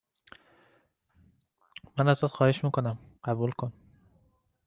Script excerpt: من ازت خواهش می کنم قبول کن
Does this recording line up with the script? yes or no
yes